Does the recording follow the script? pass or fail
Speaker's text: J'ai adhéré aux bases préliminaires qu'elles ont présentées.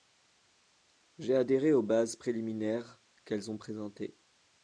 pass